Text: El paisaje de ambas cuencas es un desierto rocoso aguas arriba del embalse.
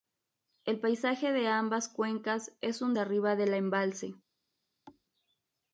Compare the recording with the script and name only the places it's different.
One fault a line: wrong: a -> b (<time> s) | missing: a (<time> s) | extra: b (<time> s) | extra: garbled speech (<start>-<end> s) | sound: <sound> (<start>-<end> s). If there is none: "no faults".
missing: desierto rocoso aguas (3.0 s)
sound: thud (4.9-5.1 s)